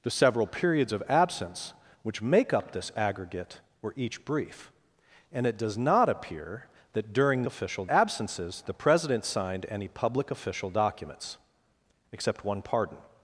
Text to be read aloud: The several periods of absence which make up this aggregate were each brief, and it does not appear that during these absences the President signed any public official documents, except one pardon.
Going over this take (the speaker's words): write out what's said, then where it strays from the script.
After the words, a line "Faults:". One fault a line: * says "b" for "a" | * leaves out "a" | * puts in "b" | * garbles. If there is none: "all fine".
The several periods of absence which make up this aggregate were each brief, and it does not appear that during official absences the President signed any public official documents, except one pardon.
Faults:
* says "official" for "these"